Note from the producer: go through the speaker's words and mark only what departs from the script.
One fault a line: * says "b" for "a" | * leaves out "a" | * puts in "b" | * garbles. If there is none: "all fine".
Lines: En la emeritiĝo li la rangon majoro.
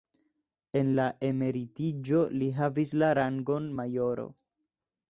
* puts in "havis"